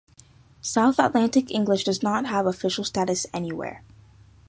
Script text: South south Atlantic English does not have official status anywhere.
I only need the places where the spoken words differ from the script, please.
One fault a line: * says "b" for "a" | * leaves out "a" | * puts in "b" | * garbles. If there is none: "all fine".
* leaves out "south"